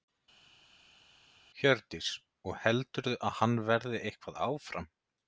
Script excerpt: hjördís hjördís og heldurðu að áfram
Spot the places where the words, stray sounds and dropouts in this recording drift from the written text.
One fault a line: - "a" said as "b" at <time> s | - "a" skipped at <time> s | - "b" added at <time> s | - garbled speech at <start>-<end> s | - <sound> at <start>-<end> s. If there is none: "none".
- "hjördís" skipped at 2.1 s
- "hann verði eitthvað" added at 3.4 s